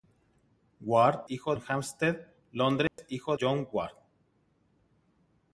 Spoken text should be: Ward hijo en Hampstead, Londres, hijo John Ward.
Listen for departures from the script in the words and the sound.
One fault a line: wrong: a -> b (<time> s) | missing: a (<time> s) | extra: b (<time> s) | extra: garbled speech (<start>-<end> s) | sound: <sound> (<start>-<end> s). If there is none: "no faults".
sound: dropout (2.9-3.0 s)